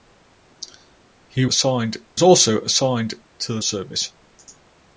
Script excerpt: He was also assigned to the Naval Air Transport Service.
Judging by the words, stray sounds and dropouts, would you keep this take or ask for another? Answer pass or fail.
fail